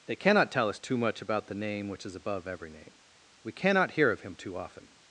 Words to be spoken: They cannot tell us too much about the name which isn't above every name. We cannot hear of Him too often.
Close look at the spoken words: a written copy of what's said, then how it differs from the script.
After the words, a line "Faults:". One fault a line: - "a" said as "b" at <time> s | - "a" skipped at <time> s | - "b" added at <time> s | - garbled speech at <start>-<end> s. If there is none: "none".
They cannot tell us too much about the name which is above every name. We cannot hear of Him too often.
Faults:
- "isn't" said as "is" at 2.0 s